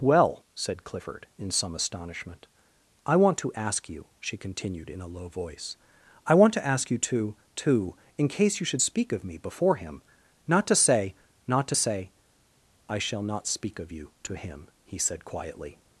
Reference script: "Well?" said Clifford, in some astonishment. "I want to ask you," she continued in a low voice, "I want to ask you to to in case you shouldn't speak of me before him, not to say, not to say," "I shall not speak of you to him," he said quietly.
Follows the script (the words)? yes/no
no